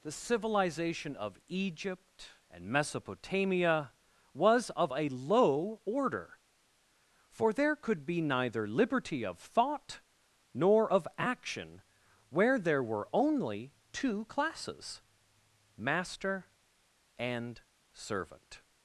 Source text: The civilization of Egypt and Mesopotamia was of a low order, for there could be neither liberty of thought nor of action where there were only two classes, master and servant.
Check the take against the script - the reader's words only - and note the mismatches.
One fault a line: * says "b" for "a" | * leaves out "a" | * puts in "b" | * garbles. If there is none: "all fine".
all fine